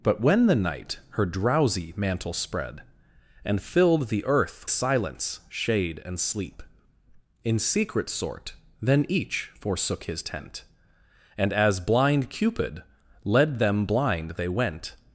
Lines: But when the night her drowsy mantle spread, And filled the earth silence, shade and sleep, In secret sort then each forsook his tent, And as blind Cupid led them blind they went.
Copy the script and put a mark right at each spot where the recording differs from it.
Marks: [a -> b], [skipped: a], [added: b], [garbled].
But when the night her drowsy mantle spread, And filled the earth silence, shade and sleep, In secret sort then each forsook his tent, And as blind Cupid led them blind they went.